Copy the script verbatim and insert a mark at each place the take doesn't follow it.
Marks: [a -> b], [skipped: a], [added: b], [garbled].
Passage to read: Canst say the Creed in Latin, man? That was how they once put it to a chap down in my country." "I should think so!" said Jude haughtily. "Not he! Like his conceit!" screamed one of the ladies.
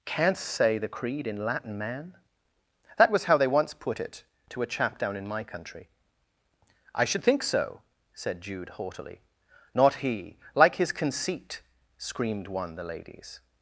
Canst say the Creed in Latin, man? That was how they once put it to a chap down in my country." "I should think so!" said Jude haughtily. "Not he! Like his conceit!" screamed one [skipped: of] the ladies.